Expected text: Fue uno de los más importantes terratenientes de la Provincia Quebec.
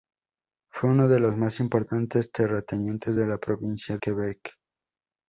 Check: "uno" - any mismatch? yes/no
no